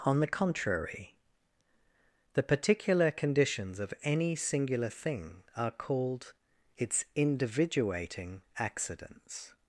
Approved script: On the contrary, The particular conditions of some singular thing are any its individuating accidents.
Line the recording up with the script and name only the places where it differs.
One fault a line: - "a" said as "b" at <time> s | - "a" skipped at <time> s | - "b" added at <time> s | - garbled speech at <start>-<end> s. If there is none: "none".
- "some" said as "any" at 4.0 s
- "any" said as "called" at 5.7 s